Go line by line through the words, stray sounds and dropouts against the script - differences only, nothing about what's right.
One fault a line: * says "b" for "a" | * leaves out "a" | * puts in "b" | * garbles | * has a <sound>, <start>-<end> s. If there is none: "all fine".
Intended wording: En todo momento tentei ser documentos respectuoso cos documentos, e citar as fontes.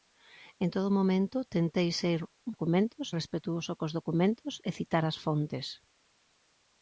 all fine